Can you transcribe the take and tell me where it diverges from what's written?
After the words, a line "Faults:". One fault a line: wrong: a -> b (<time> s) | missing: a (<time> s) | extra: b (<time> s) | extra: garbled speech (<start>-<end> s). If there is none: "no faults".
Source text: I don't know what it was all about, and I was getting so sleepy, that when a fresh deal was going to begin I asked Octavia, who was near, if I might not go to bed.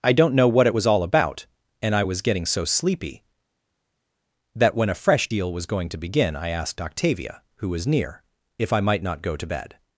I don't know what it was all about, and I was getting so sleepy, that when a fresh deal was going to begin I asked Octavia, who was near, if I might not go to bed.
Faults:
no faults